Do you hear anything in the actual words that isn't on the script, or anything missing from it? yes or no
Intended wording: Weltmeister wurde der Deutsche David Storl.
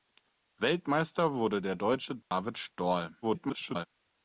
yes